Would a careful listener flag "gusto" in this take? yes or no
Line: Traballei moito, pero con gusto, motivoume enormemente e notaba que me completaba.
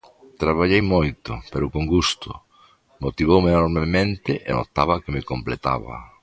no